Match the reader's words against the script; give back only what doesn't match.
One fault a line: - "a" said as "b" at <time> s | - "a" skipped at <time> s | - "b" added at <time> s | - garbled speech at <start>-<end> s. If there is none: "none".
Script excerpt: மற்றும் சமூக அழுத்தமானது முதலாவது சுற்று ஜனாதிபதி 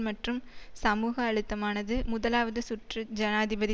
none